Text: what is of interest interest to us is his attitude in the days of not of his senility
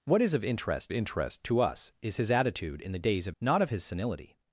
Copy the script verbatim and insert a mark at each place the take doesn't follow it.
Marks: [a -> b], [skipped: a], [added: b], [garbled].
what is of interest interest to us is his attitude in the days of not of his senility